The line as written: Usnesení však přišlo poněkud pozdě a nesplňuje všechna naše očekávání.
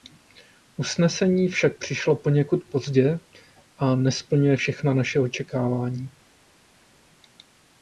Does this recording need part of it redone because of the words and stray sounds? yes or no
no